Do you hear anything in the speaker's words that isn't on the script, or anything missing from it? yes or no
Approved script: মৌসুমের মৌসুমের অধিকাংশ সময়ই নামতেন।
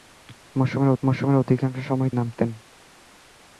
no